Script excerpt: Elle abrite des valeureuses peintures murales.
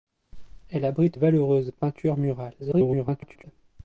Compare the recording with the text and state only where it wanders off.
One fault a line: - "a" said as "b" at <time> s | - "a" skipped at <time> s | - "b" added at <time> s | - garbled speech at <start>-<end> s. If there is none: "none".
- "des" skipped at 1.2 s
- garbled speech at 2.6-3.4 s